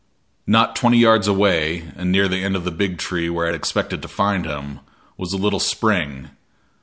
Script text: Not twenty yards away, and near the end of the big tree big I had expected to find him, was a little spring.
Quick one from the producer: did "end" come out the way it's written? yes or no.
yes